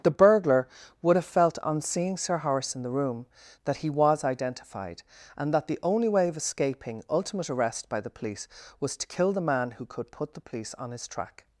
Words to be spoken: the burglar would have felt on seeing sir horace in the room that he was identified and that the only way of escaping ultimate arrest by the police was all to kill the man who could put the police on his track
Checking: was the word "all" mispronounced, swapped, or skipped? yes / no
yes